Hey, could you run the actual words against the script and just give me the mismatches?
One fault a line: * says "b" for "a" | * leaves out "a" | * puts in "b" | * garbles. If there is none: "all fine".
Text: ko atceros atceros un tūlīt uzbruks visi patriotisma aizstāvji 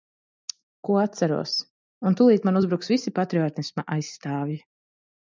* leaves out "atceros"
* puts in "man"